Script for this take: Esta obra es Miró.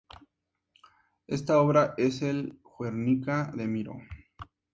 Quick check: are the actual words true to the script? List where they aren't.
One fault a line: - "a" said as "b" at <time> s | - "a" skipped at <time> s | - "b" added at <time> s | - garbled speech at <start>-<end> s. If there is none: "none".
- "el Guernica de" added at 2.2 s